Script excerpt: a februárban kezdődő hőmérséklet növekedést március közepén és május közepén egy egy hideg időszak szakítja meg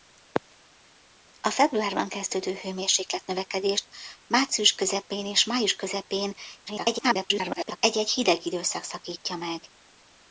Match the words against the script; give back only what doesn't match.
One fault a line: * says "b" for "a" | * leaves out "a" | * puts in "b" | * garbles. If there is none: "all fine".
* garbles